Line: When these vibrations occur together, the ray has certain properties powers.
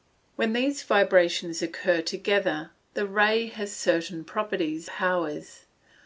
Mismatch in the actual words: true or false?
false